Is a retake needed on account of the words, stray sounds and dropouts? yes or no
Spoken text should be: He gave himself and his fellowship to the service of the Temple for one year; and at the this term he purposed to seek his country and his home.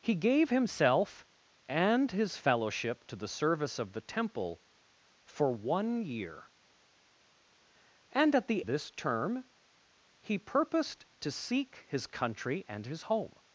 no